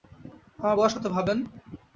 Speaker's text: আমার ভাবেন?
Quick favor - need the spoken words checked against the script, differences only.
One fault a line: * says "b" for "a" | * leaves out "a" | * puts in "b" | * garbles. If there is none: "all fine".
* puts in "বয়স কত"